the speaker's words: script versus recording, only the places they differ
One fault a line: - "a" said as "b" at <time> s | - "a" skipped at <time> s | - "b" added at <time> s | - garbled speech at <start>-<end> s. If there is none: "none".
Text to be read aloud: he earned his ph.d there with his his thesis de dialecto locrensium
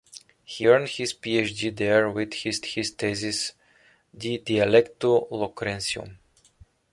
none